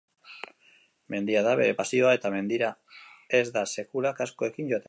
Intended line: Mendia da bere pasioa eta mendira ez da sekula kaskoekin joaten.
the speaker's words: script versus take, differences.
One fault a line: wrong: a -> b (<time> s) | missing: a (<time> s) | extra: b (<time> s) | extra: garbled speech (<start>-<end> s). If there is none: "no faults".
no faults